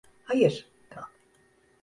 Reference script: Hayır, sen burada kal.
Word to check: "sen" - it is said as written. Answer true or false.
false